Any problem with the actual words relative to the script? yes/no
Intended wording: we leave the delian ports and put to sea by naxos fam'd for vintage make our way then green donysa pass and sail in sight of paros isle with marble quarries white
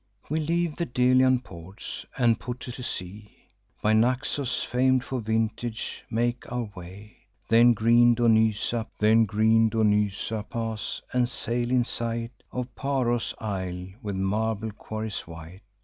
yes